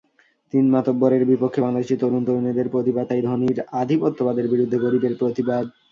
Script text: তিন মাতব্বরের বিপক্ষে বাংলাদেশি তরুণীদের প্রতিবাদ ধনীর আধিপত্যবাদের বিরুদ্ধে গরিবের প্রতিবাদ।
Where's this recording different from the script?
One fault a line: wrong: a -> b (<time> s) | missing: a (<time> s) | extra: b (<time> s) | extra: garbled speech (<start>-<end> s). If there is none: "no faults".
extra: তরুণ (2.0 s)
extra: তাই (3.1 s)